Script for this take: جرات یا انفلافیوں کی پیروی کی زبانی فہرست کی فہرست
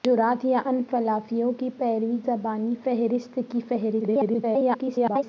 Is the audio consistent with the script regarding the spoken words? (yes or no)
no